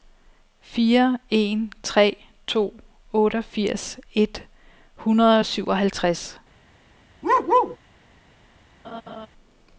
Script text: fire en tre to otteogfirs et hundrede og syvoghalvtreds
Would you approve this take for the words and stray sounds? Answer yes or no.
no